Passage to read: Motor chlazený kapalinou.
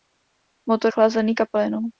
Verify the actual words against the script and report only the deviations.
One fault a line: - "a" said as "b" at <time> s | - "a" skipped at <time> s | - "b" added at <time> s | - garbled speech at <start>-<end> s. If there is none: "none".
none